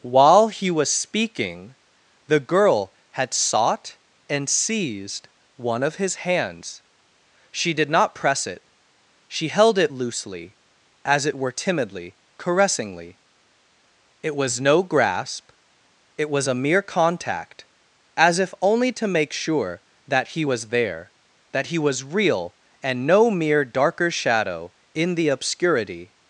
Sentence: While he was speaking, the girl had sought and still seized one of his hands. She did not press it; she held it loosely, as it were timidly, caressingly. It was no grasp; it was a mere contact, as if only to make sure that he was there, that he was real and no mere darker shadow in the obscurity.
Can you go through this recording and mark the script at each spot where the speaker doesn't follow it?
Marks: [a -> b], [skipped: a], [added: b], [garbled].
While he was speaking, the girl had sought and [skipped: still] seized one of his hands. She did not press it; she held it loosely, as it were timidly, caressingly. It was no grasp; it was a mere contact, as if only to make sure that he was there, that he was real and no mere darker shadow in the obscurity.